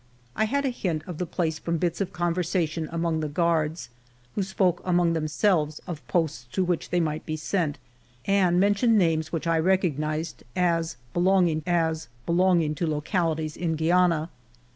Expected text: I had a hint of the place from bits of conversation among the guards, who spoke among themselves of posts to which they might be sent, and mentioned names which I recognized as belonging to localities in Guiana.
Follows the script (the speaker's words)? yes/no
no